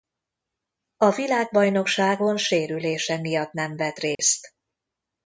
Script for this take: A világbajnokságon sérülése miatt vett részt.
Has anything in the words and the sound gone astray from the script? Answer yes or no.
yes